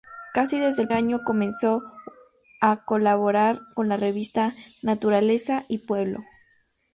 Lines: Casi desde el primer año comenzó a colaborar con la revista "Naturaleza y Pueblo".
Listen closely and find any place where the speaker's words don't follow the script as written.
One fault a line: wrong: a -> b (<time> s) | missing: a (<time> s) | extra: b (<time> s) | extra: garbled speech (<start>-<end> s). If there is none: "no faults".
missing: primer (0.9 s)